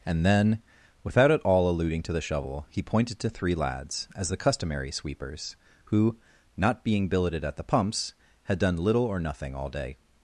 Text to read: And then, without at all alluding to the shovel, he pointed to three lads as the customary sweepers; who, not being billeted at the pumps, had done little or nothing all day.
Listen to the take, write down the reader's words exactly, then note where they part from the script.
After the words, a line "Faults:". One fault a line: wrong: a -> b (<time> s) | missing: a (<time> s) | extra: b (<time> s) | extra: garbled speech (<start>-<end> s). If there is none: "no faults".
And then, without at all alluding to the shovel, he pointed to three lads as the customary sweepers; who, not being billeted at the pumps, had done little or nothing all day.
Faults:
no faults